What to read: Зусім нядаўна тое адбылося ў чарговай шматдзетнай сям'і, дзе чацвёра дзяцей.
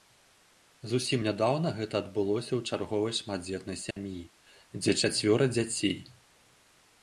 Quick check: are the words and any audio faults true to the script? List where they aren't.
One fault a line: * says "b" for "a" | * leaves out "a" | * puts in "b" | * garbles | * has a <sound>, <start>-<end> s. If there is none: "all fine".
* says "гэта" for "тое"
* has a dropout, 3.9-4.0 s